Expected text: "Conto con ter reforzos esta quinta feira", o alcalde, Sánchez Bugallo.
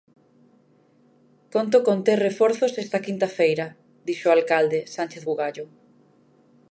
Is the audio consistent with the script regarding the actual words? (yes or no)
no